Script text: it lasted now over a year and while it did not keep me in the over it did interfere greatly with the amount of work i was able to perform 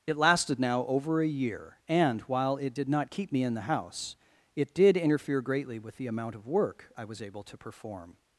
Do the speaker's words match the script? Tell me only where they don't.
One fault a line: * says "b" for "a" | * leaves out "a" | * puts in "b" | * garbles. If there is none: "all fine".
* says "house" for "over"